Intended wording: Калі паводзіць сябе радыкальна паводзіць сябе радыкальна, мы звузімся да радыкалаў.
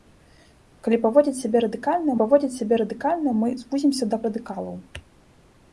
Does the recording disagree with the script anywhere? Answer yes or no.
no